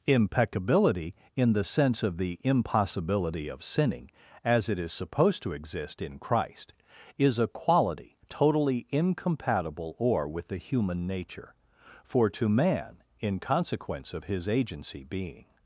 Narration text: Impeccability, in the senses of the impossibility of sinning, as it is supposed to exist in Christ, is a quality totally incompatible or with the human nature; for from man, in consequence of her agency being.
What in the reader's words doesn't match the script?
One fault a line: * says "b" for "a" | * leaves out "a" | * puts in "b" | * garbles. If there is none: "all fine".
* says "sense" for "senses"
* says "to" for "from"
* says "his" for "her"